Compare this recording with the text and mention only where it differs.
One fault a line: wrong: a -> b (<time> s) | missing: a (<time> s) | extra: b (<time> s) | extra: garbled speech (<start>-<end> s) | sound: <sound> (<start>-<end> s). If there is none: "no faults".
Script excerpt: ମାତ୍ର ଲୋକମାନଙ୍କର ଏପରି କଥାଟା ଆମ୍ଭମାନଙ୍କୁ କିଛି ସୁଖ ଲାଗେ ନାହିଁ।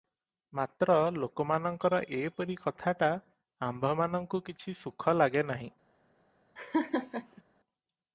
sound: laugh (6.6-7.4 s)